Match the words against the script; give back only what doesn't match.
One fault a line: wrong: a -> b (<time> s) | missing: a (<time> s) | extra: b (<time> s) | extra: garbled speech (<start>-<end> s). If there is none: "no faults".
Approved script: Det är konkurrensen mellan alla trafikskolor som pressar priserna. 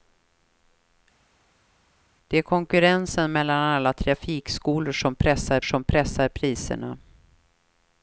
extra: som pressar (5.6 s)